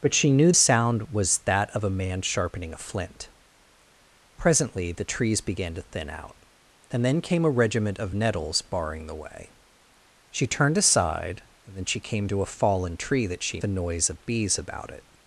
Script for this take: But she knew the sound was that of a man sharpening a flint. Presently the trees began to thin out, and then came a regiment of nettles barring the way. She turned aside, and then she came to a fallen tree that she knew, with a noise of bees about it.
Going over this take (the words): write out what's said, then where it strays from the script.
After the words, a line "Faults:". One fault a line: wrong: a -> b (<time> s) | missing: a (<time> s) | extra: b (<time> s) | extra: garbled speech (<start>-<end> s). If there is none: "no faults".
But she knew sound was that of a man sharpening a flint. Presently the trees began to thin out, and then came a regiment of nettles barring the way. She turned aside, and then she came to a fallen tree that she a noise of bees about it.
Faults:
missing: the (0.5 s)
missing: knew with (13.6 s)